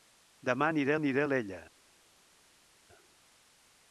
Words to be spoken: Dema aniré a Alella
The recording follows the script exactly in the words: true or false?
false